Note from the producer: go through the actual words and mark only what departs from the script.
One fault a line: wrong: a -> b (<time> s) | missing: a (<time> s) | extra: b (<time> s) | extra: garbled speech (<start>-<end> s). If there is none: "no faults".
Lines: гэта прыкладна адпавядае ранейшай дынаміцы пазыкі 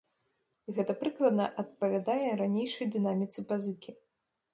no faults